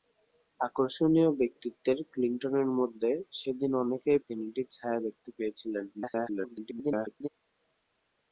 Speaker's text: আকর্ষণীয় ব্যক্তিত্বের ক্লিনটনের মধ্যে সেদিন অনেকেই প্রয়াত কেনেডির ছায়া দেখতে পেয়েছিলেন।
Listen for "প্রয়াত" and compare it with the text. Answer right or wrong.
wrong